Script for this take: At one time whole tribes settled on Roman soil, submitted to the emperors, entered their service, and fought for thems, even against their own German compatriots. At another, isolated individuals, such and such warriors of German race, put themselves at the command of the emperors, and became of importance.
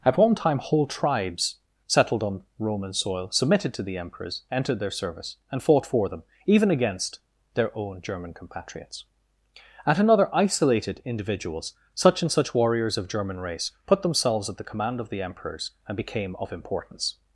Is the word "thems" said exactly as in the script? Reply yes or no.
no